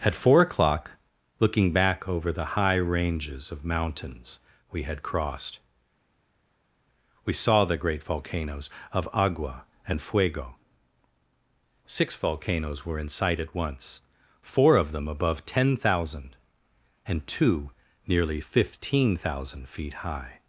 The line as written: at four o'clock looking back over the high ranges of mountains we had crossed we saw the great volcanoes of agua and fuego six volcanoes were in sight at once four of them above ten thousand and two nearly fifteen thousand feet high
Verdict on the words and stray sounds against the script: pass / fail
pass